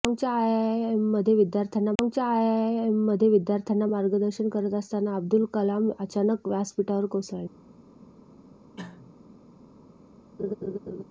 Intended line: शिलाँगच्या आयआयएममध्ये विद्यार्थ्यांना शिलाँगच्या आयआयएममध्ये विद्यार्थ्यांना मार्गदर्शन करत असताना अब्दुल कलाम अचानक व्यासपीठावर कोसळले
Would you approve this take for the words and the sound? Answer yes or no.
no